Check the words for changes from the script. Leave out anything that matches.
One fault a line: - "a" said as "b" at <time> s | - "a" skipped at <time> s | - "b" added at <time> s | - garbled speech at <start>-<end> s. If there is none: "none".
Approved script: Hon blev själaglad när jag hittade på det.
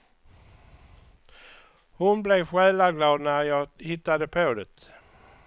none